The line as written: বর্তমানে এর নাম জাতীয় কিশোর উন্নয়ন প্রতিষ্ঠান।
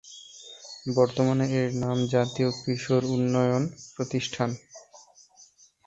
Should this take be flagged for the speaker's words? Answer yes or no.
no